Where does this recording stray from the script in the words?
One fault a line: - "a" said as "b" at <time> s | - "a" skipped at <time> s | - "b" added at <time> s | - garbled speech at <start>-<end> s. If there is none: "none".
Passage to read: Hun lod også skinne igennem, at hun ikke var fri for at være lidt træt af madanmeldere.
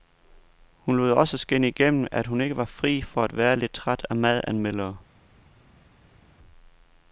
none